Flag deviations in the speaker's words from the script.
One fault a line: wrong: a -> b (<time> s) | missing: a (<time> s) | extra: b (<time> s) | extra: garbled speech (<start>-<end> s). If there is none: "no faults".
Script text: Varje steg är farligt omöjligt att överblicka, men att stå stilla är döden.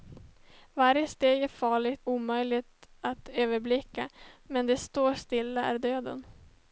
no faults